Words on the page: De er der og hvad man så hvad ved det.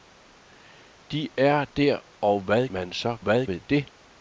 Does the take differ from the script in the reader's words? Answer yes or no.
no